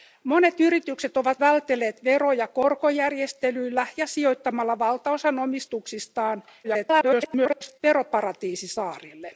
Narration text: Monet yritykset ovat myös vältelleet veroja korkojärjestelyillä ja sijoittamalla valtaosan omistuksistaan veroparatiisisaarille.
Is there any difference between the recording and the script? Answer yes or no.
yes